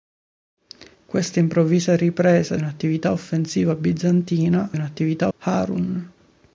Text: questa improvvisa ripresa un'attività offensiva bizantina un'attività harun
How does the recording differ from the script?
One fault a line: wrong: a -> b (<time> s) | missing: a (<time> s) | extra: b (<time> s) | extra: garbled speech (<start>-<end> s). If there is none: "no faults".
no faults